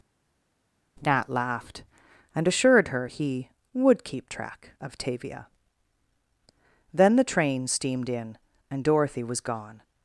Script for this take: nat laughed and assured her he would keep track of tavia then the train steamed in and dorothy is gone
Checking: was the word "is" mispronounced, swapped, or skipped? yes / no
yes